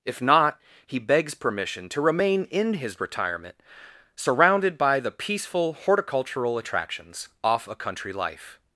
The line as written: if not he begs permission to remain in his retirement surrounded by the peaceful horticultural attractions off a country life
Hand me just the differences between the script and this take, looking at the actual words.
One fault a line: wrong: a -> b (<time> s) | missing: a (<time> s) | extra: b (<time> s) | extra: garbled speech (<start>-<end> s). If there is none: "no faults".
no faults